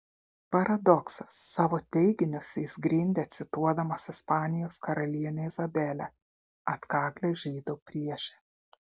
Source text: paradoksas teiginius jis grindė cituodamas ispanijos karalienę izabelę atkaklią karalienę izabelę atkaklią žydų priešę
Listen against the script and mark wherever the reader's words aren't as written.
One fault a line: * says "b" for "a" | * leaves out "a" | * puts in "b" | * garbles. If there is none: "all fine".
* puts in "savo"
* leaves out "karalienę izabelę atkaklią"